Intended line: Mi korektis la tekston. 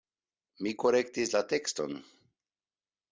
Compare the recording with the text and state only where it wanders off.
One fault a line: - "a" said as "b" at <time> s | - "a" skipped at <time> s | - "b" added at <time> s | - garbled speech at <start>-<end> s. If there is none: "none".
none